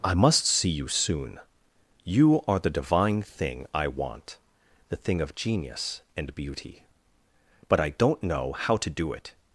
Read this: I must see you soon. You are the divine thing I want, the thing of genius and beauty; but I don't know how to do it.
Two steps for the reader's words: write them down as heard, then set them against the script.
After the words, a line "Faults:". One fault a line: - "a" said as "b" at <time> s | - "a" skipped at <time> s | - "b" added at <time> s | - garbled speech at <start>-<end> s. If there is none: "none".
I must see you soon. You are the divine thing I want, the thing of genius and beauty; but I don't know how to do it.
Faults:
none